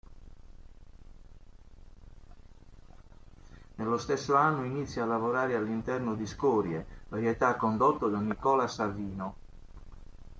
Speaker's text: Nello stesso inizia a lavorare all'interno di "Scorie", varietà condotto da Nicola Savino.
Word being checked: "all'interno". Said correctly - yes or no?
yes